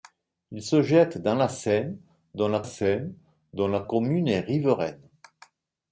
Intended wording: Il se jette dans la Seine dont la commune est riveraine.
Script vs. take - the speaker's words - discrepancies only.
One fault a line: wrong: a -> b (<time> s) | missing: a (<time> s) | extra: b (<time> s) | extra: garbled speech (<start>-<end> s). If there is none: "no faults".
extra: Seine dont la (2.6 s)